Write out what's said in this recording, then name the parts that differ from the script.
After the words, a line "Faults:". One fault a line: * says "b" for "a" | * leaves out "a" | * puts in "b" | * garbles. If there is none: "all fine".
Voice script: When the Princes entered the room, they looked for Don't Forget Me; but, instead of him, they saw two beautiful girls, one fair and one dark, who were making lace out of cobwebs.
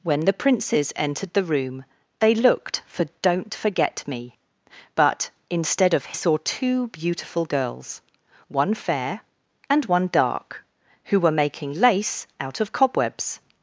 When the Princes entered the room, they looked for Don't Forget Me; but, instead of saw two beautiful girls, one fair and one dark, who were making lace out of cobwebs.
Faults:
* leaves out "him they"